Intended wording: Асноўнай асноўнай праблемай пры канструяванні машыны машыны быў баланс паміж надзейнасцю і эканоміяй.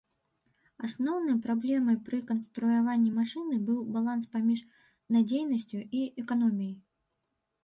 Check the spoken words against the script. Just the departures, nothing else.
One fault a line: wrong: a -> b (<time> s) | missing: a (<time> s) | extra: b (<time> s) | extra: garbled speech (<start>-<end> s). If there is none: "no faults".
missing: асноўнай (1.4 s)
missing: машыны (3.6 s)